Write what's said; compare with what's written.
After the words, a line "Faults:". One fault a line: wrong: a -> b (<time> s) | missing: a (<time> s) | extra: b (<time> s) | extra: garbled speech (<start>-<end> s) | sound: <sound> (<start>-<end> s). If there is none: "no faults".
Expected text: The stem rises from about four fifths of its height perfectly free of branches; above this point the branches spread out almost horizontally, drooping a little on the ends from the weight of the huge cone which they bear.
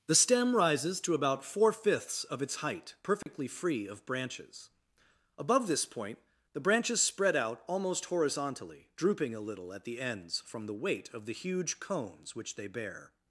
The stem rises to about four fifths of its height perfectly free of branches; above this point the branches spread out almost horizontally, drooping a little at the ends from the weight of the huge cones which they bear.
Faults:
wrong: from -> to (1.0 s)
sound: dropout (3.2-3.3 s)
wrong: on -> at (9.7 s)
wrong: cone -> cones (11.8 s)